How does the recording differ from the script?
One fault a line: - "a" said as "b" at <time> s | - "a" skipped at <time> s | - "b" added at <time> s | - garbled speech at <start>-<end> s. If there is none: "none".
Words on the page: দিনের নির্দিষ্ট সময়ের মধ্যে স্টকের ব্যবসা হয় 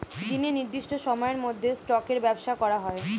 - "করা" added at 2.5 s